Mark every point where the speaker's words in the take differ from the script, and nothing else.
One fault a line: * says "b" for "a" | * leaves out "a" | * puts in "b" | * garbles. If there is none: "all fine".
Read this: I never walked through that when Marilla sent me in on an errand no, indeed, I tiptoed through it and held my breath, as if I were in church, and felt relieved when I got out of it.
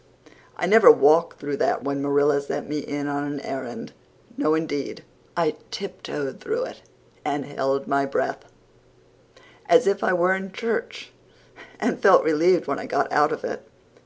all fine